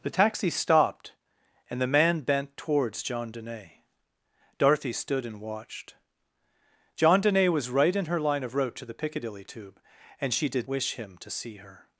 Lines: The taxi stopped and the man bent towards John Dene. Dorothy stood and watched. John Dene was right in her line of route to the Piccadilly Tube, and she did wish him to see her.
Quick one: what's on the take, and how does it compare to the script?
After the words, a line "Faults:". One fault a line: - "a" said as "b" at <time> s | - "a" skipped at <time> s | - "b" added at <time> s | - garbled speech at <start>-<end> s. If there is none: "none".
The taxi stopped and the man bent towards John Dene. Dorothy stood and watched. John Dene was right in her line of route to the Piccadilly Tube, and she did wish him to see her.
Faults:
none